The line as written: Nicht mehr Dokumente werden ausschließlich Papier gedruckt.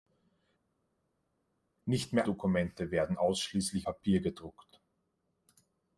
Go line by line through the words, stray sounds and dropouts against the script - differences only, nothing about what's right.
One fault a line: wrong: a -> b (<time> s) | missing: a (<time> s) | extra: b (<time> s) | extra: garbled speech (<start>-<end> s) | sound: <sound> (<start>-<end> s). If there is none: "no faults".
no faults